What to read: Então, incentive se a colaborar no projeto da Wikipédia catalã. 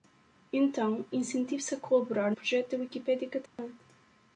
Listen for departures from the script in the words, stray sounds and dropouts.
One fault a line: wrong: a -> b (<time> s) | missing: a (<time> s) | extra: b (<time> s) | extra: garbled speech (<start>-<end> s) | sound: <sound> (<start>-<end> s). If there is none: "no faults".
missing: no (2.3 s)
sound: dropout (3.5-3.6 s)